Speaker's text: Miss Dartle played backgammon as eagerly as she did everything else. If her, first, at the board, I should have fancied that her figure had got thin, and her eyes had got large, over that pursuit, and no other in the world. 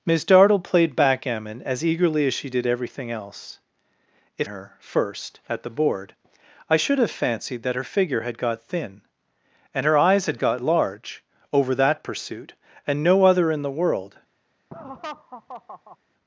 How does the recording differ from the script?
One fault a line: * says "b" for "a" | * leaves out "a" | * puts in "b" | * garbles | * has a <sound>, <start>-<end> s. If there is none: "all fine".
* has a laugh, 14.7-16.0 s